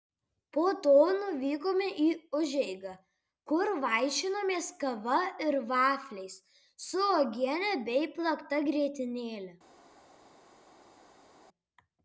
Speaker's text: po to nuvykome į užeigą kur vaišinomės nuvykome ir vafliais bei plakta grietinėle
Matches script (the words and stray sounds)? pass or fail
fail